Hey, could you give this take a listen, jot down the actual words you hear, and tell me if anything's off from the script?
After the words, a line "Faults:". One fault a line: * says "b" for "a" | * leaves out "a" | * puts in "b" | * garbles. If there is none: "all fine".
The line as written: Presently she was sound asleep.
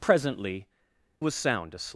Presently was sound asleep.
Faults:
* leaves out "she"